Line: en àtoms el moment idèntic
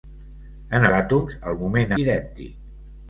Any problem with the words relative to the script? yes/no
no